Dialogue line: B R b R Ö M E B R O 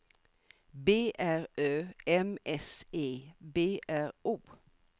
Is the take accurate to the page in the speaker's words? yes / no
no